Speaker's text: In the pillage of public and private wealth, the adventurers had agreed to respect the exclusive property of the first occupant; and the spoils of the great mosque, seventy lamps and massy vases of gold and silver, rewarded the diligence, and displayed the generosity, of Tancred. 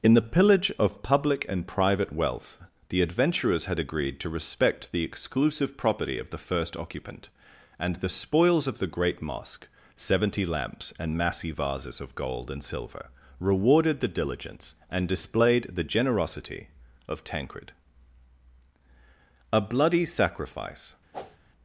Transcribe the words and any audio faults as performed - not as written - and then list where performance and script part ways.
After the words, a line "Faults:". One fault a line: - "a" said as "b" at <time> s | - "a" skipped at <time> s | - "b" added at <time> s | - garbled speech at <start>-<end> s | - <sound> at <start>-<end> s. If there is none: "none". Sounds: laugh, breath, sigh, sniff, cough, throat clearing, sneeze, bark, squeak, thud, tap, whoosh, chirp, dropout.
In the pillage of public and private wealth, the adventurers had agreed to respect the exclusive property of the first occupant; and the spoils of the great mosque, seventy lamps and massy vases of gold and silver, rewarded the diligence, and displayed the generosity, of Tancred. A bloody sacrifice
Faults:
- "A bloody sacrifice" added at 19.5 s
- whoosh at 21.1-21.4 s